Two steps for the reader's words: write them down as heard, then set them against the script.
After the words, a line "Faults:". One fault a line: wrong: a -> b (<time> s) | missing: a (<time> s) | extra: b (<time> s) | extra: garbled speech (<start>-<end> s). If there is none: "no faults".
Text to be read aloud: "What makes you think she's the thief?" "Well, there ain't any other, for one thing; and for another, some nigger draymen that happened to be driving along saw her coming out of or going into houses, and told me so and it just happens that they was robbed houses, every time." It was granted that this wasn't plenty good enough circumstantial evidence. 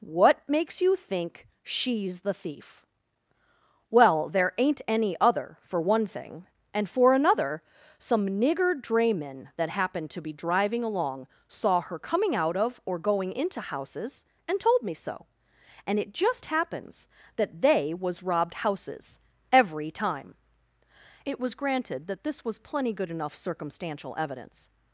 "What makes you think she's the thief?" "Well, there ain't any other, for one thing; and for another, some nigger draymen that happened to be driving along saw her coming out of or going into houses, and told me so and it just happens that they was robbed houses, every time." It was granted that this was plenty good enough circumstantial evidence.
Faults:
wrong: wasn't -> was (22.4 s)